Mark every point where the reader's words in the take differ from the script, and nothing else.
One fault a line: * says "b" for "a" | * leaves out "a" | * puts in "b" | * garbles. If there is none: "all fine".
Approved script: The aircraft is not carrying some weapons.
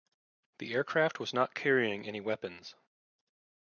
* says "was" for "is"
* says "any" for "some"